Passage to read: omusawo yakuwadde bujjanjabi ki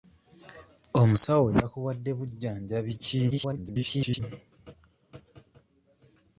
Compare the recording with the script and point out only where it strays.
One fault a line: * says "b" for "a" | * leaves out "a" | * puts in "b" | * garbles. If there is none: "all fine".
* garbles